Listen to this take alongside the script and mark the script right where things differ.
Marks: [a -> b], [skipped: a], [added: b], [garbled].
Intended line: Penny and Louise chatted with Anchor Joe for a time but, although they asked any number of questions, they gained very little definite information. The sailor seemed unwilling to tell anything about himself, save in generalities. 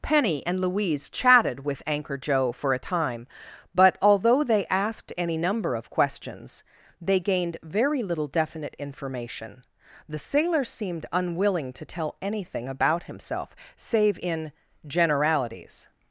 Penny and Louise chatted with Anchor Joe for a time but, although they asked any number of questions, they gained very little definite information. The sailor seemed unwilling to tell anything about himself, save in generalities.